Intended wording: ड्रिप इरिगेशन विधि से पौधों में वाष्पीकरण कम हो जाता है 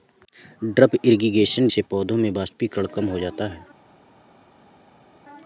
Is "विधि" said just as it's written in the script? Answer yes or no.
no